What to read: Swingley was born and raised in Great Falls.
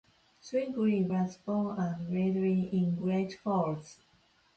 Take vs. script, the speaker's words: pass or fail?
pass